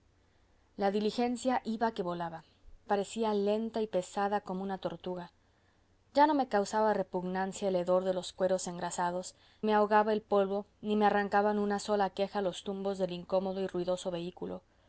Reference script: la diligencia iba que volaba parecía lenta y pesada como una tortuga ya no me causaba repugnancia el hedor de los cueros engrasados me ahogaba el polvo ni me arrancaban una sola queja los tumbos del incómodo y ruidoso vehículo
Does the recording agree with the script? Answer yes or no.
yes